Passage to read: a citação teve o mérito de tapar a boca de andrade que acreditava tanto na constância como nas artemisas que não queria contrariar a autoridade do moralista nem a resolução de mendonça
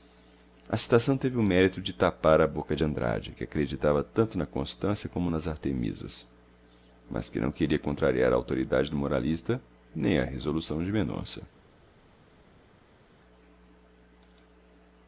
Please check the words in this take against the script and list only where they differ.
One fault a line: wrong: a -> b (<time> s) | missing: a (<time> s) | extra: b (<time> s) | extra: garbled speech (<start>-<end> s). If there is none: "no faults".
extra: mas (7.1 s)